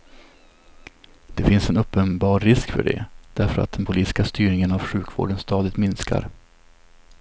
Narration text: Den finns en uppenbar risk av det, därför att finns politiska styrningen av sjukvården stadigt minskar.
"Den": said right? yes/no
no